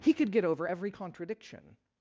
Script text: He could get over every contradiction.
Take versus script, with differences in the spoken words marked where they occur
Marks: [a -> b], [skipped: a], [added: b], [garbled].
He could get over every contradiction.